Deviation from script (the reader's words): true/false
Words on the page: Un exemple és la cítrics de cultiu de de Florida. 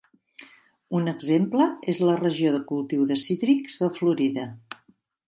true